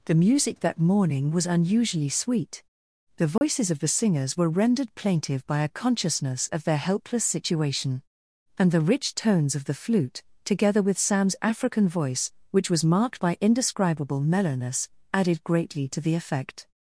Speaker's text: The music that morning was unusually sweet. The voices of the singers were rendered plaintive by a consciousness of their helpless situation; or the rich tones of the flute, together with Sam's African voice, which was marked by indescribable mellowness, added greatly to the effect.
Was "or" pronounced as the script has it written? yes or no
no